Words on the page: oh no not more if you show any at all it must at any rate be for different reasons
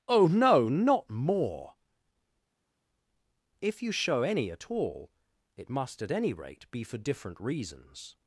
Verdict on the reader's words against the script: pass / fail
pass